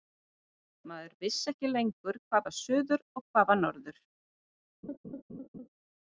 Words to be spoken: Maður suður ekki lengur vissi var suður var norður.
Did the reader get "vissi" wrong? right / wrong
wrong